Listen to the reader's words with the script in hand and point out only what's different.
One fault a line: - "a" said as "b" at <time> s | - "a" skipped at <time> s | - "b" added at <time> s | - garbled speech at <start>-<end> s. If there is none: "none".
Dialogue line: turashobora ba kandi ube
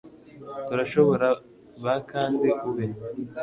none